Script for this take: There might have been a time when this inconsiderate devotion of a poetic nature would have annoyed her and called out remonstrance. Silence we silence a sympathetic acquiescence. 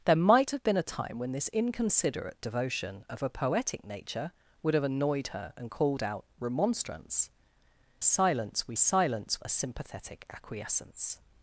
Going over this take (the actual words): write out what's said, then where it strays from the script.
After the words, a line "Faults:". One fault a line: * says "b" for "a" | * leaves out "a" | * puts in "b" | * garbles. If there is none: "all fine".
There might have been a time when this inconsiderate devotion of a poetic nature would have annoyed her and called out remonstrance. Silence we silence a sympathetic acquiescence.
Faults:
all fine